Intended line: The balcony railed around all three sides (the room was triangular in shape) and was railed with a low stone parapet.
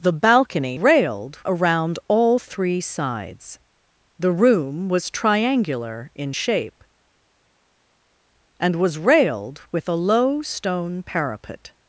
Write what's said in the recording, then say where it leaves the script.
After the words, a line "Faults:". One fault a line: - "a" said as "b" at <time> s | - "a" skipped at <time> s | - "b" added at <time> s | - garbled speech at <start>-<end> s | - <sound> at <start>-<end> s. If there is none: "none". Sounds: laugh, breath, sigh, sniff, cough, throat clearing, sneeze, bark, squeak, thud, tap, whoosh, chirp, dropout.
The balcony railed around all three sides (the room was triangular in shape) and was railed with a low stone parapet.
Faults:
none